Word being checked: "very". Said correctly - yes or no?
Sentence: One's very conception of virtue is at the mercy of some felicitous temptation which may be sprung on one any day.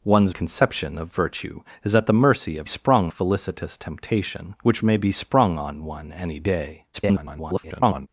no